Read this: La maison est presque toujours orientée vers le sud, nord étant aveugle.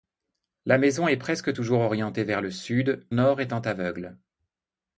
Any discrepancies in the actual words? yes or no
no